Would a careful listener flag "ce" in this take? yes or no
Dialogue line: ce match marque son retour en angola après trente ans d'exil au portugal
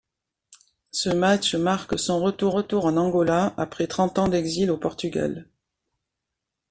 no